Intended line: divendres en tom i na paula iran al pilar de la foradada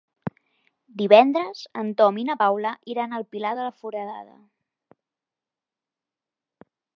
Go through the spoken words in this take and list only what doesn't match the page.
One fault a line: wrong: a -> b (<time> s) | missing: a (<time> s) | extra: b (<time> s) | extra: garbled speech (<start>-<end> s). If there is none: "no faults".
no faults